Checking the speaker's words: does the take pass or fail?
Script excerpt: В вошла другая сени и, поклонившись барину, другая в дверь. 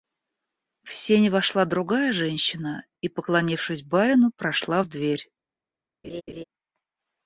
fail